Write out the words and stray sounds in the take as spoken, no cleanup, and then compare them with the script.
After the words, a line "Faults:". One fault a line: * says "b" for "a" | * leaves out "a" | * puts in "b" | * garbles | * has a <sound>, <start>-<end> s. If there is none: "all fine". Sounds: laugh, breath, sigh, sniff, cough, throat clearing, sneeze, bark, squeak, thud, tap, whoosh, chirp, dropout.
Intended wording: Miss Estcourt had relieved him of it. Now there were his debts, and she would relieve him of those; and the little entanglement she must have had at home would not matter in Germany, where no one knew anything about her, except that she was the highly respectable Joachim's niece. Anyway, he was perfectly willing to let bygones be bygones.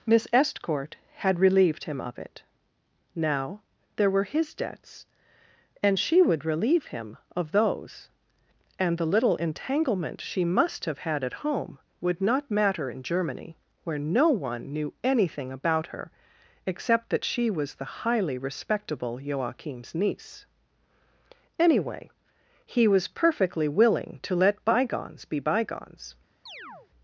Miss Estcourt had relieved him of it. Now there were his debts, and she would relieve him of those; and the little entanglement she must have had at home would not matter in Germany, where no one knew anything about her, except that she was the highly respectable Joachim's niece. Anyway, he was perfectly willing to let bygones be bygones.
Faults:
* has a chirp, 26.5-26.9 s